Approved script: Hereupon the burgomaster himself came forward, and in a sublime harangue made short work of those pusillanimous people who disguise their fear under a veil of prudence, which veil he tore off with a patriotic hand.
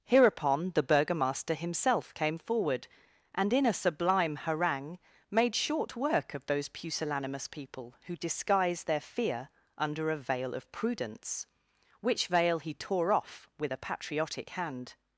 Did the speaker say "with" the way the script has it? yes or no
yes